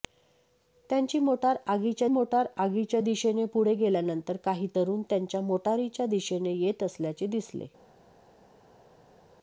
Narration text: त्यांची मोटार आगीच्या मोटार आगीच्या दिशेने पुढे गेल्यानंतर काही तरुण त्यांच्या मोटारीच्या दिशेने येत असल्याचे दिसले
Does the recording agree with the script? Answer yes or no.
yes